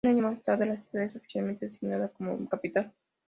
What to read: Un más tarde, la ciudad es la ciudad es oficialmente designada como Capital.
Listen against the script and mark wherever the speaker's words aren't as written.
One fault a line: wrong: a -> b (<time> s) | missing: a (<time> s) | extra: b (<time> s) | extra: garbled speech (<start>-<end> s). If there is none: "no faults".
extra: año (0.1 s)
missing: la ciudad es (1.2 s)